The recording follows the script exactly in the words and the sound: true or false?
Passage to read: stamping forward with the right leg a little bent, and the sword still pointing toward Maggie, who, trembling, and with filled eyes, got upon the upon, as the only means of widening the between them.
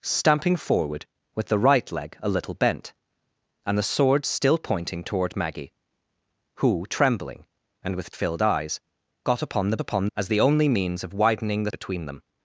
true